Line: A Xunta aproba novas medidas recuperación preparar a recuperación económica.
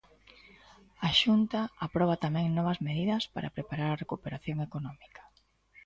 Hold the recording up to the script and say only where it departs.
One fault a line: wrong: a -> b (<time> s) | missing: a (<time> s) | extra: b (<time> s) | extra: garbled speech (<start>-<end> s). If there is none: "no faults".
extra: tamén (2.2 s)
wrong: recuperación -> para (3.3 s)